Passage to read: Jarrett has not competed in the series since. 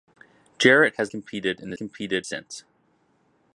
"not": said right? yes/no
no